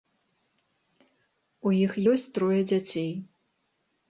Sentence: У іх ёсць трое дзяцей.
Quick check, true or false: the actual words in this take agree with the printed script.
true